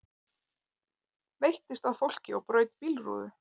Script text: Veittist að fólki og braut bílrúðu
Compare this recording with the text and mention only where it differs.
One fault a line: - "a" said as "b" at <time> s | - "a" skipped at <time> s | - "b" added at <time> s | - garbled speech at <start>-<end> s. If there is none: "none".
none